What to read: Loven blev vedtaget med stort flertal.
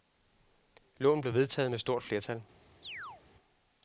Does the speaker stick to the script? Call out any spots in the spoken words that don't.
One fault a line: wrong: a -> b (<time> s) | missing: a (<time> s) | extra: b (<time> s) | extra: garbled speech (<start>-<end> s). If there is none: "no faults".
no faults